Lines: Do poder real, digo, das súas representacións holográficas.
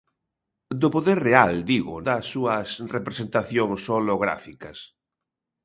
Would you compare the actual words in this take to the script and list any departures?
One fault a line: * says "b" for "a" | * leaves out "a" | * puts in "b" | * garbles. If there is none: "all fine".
all fine